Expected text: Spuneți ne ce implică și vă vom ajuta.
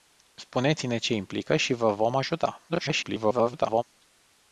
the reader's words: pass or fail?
fail